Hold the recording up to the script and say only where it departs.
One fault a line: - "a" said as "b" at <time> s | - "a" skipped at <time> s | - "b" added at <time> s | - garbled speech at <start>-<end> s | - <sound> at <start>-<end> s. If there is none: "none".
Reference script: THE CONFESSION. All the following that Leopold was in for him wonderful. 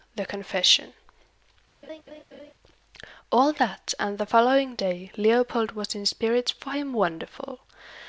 - laugh at 1.8-2.5 s
- "that and" added at 3.5 s
- "that" said as "day" at 4.7 s
- "spirits" added at 6.1 s